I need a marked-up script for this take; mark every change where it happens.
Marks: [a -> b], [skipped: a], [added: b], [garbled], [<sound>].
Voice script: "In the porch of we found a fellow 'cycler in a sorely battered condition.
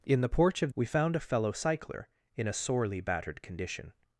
"In the porch of we found a fellow 'cycler in a sorely battered condition.